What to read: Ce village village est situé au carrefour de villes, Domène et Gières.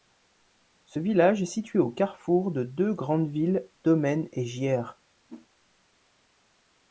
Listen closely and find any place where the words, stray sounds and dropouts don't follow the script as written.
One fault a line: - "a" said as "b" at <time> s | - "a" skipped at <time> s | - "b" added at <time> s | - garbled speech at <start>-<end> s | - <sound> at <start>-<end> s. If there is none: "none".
- "village" skipped at 1.4 s
- "deux grandes" added at 2.6 s
- whoosh at 5.3-5.5 s